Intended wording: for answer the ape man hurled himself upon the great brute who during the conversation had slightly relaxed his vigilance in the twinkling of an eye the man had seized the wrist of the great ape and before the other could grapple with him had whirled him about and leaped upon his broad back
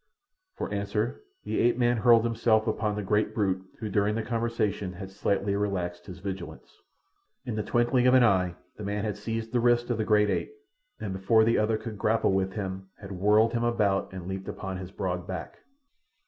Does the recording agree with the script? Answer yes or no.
yes